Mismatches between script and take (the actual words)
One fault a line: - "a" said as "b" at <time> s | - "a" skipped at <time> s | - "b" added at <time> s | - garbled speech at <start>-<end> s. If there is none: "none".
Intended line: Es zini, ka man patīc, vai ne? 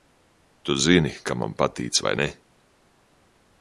- "Es" said as "Tu" at 0.6 s